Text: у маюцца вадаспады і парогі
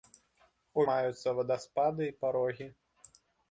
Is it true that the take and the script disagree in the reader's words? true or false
false